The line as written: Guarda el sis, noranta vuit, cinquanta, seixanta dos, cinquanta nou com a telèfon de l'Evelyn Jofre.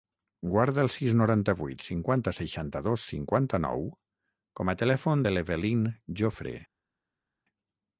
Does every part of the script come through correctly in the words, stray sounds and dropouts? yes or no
yes